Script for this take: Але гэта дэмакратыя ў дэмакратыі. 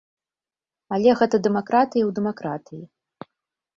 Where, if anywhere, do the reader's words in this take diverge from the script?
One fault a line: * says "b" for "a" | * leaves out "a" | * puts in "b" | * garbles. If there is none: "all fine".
all fine